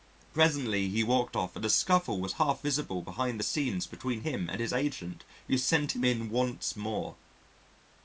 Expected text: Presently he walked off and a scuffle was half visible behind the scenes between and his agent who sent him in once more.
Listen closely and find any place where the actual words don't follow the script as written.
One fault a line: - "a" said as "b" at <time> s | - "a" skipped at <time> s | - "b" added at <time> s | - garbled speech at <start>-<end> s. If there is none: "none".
- "him" added at 4.2 s